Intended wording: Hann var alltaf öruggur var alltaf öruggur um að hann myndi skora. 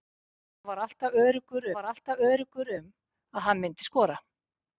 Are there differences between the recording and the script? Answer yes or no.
no